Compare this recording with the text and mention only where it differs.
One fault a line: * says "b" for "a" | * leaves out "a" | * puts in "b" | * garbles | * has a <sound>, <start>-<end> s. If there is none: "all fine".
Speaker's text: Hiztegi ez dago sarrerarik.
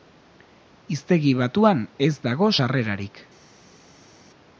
* puts in "batuan"